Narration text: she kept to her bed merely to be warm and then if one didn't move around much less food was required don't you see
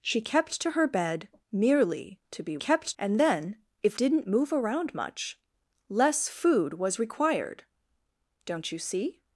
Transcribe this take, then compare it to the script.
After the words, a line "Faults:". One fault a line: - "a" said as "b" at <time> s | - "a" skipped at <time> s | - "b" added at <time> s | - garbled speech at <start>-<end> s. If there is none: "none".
she kept to her bed merely to be kept and then if didn't move around much less food was required don't you see
Faults:
- "warm" said as "kept" at 2.6 s
- "one" skipped at 4.0 s